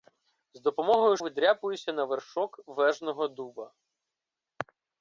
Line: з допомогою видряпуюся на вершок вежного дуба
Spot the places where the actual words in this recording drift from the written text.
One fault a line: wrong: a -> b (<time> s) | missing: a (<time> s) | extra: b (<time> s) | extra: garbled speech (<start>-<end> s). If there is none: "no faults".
no faults